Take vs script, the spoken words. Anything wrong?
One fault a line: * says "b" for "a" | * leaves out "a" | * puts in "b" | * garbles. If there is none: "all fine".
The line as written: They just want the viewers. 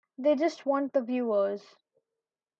all fine